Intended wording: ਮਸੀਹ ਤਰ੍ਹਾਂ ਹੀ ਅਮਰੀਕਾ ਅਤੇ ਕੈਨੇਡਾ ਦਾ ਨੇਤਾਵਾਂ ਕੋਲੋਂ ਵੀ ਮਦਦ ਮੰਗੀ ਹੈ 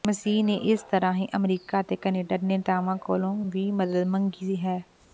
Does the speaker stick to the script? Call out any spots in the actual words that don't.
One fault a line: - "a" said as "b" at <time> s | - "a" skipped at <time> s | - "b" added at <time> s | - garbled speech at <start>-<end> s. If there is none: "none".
- "ਨੇ ਇਸ" added at 0.4 s
- "ਦਾ" said as "ਦੇ" at 2.4 s